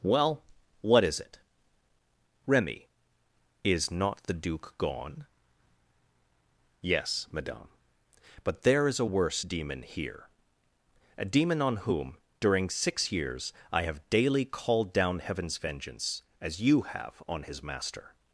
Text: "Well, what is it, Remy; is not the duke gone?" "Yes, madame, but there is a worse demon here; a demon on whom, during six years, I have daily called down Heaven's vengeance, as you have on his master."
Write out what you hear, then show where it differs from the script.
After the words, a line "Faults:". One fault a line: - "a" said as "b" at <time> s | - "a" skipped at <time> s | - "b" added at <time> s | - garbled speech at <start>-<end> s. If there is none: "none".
"Well, what is it, Remy; is not the duke gone?" "Yes, madame, but there is a worse demon here; a demon on whom, during six years, I have daily called down Heaven's vengeance, as you have on his master."
Faults:
none